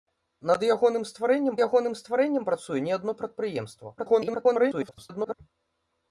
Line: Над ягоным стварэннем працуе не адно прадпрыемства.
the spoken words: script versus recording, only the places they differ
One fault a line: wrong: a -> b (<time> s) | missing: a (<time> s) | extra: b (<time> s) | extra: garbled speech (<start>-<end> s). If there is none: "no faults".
extra: ягоным стварэннем (1.7 s)
extra: garbled speech (4.0-5.3 s)